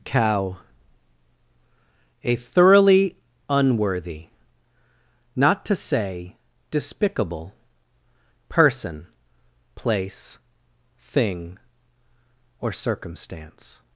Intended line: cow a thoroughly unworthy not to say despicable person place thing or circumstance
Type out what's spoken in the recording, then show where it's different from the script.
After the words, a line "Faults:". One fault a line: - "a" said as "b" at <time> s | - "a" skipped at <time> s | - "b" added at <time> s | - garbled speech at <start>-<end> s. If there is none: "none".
cow a thoroughly unworthy not to say despicable person place thing or circumstance
Faults:
none